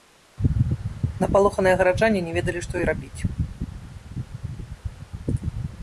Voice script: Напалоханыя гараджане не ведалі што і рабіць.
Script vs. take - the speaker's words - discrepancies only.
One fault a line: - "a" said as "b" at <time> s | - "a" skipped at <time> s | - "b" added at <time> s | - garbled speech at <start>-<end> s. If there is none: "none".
none